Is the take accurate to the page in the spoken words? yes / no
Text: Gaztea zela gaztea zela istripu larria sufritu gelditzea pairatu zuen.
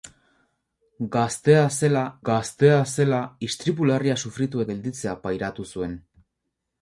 yes